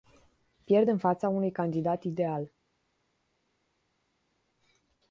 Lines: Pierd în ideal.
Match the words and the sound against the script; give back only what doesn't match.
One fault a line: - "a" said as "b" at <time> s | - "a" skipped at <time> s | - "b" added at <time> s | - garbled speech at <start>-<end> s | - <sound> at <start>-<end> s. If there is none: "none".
- "fața unui candidat" added at 1.0 s